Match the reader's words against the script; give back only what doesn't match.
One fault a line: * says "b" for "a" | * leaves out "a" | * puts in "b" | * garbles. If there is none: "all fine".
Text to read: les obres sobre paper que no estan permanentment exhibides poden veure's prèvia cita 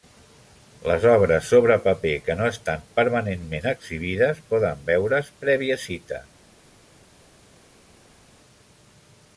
all fine